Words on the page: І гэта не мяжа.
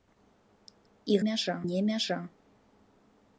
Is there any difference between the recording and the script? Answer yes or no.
yes